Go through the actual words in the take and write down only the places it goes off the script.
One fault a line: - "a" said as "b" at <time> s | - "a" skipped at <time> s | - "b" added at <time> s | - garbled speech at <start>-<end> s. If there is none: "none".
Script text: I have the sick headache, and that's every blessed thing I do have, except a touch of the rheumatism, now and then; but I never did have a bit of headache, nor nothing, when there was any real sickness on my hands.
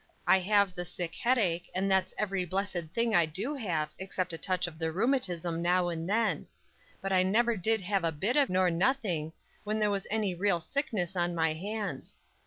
- "headache" skipped at 8.5 s